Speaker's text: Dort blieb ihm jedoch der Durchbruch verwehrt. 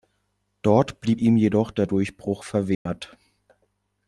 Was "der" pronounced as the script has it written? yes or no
yes